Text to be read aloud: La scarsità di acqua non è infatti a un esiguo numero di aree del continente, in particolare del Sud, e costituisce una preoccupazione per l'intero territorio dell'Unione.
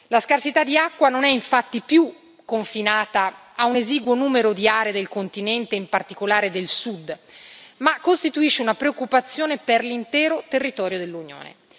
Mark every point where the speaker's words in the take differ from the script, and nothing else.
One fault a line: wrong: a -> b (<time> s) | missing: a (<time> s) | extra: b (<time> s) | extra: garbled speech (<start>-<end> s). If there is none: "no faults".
extra: più confinata (1.8 s)
wrong: e -> ma (7.8 s)